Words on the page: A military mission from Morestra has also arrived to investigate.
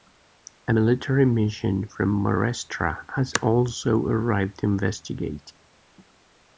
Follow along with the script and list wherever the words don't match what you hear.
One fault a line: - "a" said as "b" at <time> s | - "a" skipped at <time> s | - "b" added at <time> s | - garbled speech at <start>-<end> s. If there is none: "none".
none